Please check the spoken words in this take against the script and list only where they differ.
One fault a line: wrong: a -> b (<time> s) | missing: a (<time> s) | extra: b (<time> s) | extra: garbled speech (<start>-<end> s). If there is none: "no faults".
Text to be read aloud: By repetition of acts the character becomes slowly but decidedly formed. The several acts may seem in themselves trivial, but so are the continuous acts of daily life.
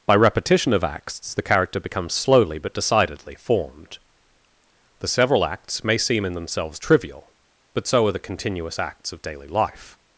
no faults